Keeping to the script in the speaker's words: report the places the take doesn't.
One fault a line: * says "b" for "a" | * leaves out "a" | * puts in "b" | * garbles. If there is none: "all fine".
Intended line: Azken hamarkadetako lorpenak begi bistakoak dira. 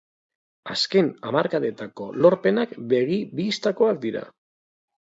all fine